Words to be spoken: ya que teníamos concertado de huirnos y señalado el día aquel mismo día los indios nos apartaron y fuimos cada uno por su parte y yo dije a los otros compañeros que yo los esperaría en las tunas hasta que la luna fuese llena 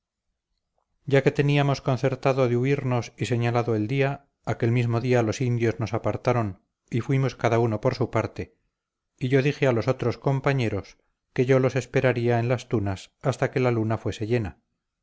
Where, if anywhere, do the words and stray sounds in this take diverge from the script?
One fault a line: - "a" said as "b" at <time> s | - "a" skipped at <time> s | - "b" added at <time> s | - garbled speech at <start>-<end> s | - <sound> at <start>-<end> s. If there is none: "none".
none